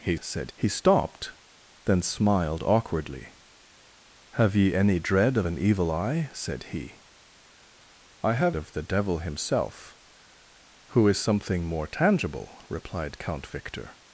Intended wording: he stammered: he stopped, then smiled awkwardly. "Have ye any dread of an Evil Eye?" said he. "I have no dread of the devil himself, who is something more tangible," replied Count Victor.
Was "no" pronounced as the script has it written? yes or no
no